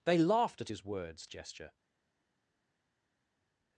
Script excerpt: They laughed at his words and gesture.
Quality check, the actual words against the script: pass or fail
fail